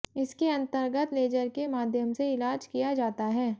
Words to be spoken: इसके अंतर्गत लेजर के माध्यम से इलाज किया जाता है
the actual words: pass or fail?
pass